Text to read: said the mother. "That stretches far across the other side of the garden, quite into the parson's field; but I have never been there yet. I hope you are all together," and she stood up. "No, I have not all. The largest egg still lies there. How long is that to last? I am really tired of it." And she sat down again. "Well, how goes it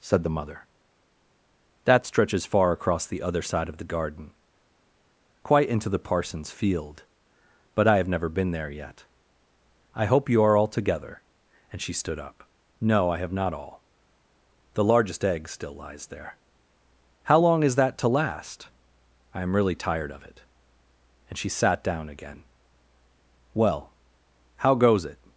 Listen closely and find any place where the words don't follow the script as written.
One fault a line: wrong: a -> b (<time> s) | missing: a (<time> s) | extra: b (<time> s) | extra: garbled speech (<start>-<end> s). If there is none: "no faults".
no faults